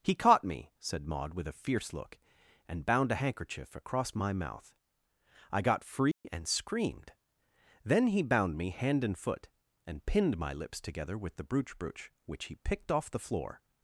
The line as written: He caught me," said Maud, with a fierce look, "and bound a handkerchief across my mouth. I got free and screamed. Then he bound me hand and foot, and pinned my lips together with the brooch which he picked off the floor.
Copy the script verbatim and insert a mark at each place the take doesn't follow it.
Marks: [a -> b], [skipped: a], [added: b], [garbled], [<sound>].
He caught me," said Maud, with a fierce look, "and bound a handkerchief across my mouth. I got free [dropout] and screamed. Then he bound me hand and foot, and pinned my lips together with the brooch [added: brooch] which he picked off the floor.